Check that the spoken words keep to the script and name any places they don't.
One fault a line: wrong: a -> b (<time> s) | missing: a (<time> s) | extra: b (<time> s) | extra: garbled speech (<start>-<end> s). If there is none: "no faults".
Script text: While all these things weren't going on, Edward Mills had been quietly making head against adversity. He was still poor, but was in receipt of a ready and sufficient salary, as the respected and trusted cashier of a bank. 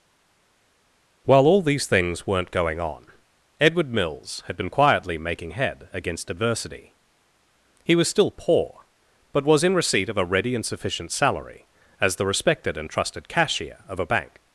no faults